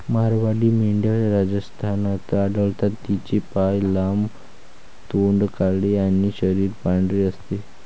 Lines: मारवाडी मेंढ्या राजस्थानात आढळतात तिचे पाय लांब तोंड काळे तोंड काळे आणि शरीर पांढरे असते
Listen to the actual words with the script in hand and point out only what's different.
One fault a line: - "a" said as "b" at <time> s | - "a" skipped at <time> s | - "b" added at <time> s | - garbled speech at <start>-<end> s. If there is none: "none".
- "तोंड काळे" skipped at 5.9 s